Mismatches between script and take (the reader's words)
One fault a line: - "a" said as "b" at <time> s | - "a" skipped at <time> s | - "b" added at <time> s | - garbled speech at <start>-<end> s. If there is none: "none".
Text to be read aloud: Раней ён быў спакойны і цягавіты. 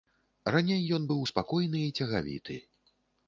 none